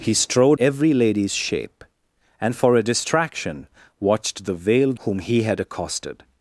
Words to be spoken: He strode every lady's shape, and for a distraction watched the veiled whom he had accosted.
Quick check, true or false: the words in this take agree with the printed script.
true